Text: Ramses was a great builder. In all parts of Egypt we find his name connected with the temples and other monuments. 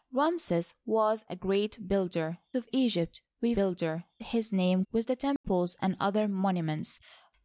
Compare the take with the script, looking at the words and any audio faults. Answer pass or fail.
fail